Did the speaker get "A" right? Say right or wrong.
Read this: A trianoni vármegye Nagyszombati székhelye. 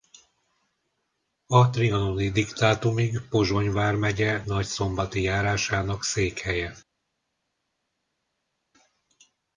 right